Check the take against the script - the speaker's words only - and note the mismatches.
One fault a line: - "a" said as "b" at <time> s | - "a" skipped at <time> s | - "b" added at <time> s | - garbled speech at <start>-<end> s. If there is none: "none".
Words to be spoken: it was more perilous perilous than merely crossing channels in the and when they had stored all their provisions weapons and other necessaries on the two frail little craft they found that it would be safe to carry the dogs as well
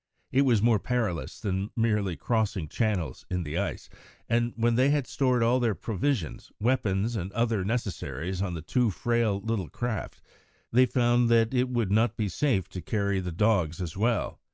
- "perilous" skipped at 1.4 s
- "ice" added at 3.6 s
- "not" added at 11.9 s